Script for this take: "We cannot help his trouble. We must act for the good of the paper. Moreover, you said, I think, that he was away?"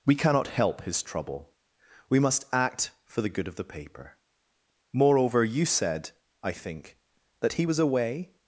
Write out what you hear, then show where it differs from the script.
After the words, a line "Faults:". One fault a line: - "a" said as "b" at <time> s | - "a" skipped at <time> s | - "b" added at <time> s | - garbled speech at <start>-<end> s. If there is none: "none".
"We cannot help his trouble. We must act for the good of the paper. Moreover, you said, I think, that he was away?"
Faults:
none